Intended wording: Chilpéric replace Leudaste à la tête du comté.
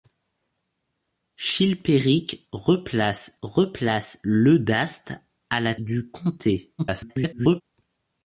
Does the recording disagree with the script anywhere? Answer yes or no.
yes